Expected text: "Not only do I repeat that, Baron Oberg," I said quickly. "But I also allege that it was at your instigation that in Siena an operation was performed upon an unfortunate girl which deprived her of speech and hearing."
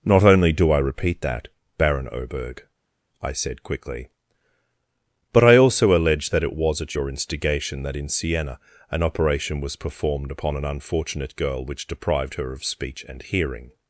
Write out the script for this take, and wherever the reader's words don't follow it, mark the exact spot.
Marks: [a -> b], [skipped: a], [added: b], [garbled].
"Not only do I repeat that, Baron Oberg," I said quickly. "But I also allege that it was at your instigation that in Siena an operation was performed upon an unfortunate girl which deprived her of speech and hearing."